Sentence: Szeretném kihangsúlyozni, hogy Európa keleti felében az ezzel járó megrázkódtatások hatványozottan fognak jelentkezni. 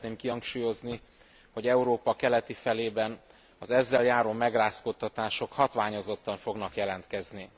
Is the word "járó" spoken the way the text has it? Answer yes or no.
yes